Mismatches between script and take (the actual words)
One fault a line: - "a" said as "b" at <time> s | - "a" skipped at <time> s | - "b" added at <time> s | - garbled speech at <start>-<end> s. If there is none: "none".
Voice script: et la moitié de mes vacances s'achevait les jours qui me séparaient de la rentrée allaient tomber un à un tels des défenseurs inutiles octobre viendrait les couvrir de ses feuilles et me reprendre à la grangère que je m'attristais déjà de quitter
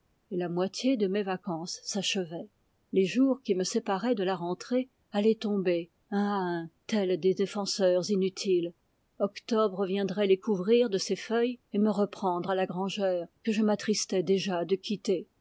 none